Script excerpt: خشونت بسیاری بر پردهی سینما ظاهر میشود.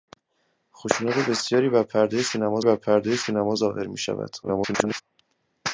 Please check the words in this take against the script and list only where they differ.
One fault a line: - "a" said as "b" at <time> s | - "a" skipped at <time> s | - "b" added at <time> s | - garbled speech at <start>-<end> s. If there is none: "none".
- "بر پردهی سینما" added at 2.6 s
- garbled speech at 4.4-5.0 s